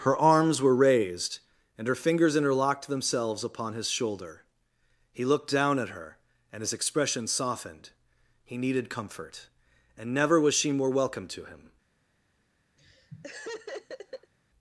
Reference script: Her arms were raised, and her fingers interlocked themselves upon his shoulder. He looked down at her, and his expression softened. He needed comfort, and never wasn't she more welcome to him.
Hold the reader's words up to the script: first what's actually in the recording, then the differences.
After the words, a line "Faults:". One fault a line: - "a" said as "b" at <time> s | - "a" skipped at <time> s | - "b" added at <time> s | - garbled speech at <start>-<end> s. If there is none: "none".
Her arms were raised, and her fingers interlocked themselves upon his shoulder. He looked down at her, and his expression softened. He needed comfort, and never was she more welcome to him.
Faults:
- "wasn't" said as "was" at 10.4 s